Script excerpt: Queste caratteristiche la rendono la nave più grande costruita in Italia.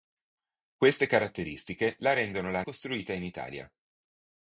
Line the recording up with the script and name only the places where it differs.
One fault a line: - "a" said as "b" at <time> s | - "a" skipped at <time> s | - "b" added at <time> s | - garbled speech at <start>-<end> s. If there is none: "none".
- "nave più grande" skipped at 2.6 s